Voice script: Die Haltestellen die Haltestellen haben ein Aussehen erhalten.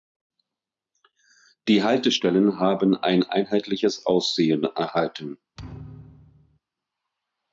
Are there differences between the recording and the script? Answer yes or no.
yes